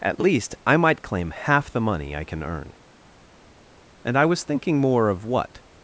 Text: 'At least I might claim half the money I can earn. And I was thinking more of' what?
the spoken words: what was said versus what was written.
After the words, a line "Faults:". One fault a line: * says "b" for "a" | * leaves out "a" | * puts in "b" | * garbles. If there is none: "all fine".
'At least I might claim half the money I can earn. And I was thinking more of' what?
Faults:
all fine